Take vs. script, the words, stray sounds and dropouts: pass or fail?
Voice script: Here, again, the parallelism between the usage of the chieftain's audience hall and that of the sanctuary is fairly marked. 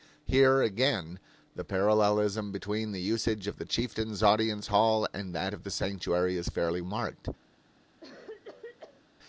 fail